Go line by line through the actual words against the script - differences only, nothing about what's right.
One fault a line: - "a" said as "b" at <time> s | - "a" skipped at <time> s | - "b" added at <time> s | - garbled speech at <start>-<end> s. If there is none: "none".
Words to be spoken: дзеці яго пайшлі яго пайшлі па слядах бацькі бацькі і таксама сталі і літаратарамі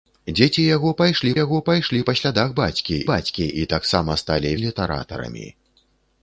none